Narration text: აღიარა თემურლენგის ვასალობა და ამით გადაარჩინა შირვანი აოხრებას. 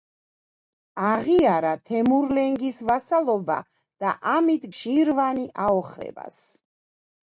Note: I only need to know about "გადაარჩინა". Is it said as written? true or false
false